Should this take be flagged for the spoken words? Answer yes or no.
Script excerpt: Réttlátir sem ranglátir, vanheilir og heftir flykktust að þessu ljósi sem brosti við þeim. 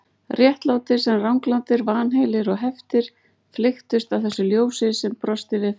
no